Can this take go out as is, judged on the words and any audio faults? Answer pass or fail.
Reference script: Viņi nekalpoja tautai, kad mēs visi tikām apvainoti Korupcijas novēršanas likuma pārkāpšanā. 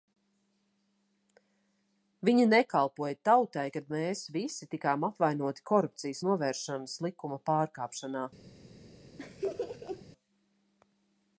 fail